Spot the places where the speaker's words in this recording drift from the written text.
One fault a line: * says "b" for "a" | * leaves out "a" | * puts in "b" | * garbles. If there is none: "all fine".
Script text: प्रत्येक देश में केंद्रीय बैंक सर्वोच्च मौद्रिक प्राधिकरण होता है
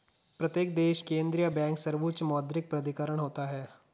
* leaves out "में"